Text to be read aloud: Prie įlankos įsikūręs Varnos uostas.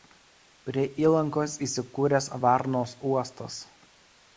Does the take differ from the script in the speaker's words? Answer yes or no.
no